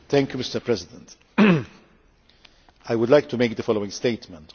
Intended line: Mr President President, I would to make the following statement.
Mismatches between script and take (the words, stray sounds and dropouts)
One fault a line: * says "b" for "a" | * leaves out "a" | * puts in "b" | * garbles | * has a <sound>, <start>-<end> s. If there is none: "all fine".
* leaves out "President"
* puts in "like"